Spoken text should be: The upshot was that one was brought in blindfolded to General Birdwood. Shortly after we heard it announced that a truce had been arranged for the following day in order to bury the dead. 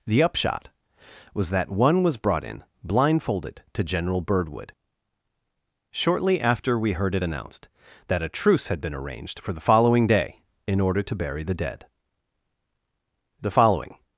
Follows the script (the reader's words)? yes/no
no